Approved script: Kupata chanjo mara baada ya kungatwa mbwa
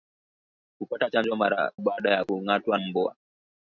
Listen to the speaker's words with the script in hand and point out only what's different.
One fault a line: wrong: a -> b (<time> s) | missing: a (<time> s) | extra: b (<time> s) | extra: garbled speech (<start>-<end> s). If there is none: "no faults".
no faults